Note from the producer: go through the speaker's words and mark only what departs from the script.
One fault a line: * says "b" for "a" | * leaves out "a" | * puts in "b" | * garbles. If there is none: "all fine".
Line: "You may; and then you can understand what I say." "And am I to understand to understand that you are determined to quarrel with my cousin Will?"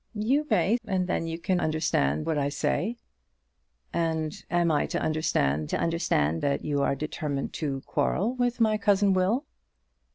all fine